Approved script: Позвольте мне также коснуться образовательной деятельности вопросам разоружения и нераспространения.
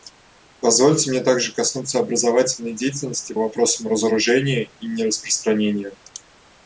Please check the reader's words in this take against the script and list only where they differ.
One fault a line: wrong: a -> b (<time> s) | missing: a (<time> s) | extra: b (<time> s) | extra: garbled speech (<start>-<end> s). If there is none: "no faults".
no faults